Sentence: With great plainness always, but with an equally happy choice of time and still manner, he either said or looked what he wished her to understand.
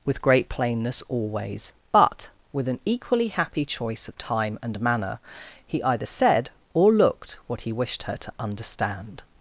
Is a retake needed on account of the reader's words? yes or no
yes